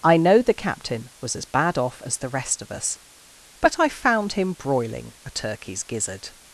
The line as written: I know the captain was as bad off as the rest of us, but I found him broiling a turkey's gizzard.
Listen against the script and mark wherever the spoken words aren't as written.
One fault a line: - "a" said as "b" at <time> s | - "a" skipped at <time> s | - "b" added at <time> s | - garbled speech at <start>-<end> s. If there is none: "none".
none